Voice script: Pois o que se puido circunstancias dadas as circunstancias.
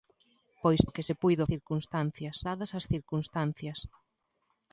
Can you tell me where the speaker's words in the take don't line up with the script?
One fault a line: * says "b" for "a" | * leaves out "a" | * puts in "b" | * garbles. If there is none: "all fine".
all fine